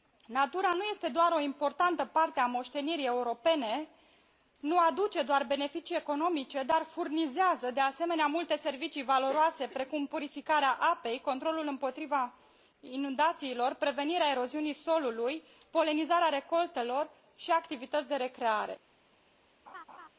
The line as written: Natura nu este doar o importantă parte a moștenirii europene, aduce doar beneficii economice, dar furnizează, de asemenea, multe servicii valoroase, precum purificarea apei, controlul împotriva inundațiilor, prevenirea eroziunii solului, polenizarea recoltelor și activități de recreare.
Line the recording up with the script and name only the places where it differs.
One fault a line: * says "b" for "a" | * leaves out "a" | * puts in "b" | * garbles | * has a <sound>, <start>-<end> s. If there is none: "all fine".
* puts in "nu"
* has a laugh, 19.7-20.1 s